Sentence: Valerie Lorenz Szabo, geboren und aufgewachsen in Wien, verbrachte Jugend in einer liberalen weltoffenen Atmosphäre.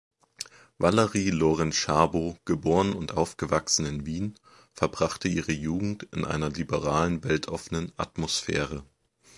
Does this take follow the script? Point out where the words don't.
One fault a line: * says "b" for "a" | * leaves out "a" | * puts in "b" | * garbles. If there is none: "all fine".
* puts in "ihre"